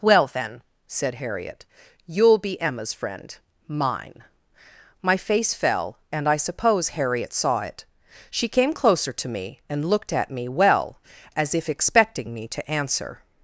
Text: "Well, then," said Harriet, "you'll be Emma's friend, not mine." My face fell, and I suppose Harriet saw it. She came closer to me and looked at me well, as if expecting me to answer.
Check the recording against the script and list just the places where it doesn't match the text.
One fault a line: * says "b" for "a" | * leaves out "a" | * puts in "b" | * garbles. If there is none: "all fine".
* leaves out "not"